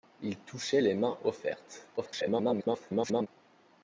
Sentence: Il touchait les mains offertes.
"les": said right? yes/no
yes